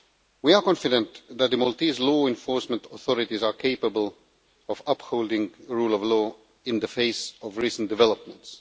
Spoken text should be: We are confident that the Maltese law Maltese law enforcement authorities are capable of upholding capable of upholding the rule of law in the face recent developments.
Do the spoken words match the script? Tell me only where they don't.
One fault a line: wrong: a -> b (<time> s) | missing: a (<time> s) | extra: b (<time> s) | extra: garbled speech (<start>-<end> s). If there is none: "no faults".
missing: Maltese law (2.2 s)
missing: capable of upholding (5.5 s)
extra: of (7.4 s)